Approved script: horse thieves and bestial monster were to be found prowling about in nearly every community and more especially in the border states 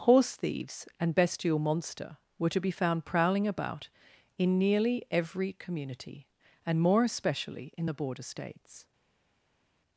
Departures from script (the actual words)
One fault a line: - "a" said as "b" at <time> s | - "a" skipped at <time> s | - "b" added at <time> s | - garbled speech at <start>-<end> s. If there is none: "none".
none